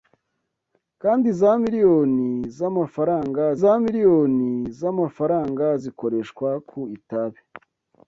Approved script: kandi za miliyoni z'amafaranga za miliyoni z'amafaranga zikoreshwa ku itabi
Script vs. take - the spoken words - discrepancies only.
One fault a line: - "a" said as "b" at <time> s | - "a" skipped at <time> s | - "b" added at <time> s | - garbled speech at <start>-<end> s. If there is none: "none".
none